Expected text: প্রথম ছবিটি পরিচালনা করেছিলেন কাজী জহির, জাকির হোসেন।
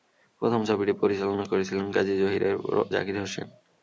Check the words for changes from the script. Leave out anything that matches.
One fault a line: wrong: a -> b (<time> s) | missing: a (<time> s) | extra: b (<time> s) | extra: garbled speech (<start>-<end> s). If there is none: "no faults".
no faults